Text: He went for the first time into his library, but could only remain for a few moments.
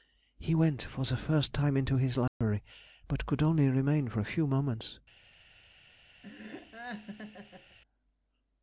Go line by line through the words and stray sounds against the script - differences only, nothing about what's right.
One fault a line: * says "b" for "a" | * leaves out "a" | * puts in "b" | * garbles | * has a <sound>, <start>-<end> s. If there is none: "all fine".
* has a dropout, 2.3-2.4 s
* has a laugh, 6.2-7.8 s